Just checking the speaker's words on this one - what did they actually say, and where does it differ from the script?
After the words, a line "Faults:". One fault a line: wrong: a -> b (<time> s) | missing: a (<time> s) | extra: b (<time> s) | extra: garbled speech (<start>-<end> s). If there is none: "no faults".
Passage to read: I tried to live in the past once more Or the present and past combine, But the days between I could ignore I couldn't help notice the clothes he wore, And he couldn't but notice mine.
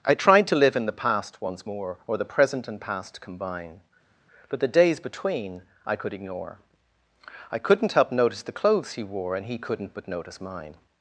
I tried to live in the past once more Or the present and past combine, But the days between I could ignore I couldn't help notice the clothes he wore, And he couldn't but notice mine.
Faults:
no faults